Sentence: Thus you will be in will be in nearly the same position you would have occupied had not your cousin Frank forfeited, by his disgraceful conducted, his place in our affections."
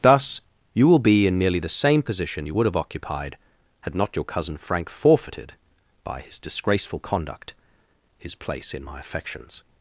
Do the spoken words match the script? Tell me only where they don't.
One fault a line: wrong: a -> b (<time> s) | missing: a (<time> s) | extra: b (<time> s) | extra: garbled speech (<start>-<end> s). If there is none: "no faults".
missing: will be in (1.4 s)
wrong: conducted -> conduct (7.0 s)
wrong: our -> my (8.8 s)